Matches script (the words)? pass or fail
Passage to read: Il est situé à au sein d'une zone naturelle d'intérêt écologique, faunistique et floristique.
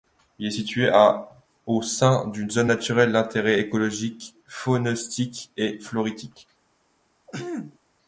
pass